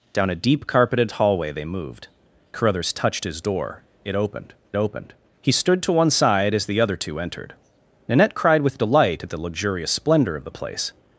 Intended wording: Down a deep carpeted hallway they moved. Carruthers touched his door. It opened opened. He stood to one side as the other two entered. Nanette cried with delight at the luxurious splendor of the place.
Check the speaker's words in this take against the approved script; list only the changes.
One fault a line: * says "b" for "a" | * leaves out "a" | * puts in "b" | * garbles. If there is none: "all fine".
all fine